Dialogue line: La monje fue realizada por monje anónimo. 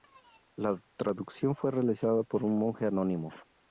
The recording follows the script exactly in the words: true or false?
false